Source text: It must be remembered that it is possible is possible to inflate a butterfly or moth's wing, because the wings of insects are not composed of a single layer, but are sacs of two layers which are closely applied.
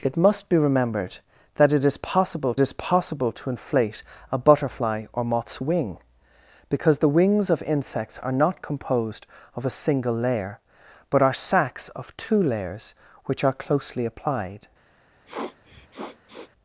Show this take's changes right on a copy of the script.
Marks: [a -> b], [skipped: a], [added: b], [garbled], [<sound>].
It must be remembered that it is possible is possible to inflate a butterfly or moth's wing, because the wings of insects are not composed of a single layer, but are sacs of two layers which are closely applied. [sniff]